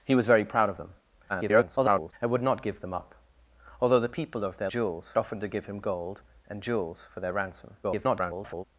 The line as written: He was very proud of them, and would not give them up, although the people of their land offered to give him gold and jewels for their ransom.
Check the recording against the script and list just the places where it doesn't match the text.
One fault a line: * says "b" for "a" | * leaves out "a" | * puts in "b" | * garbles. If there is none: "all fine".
* garbles
* says "jewels" for "land"
* garbles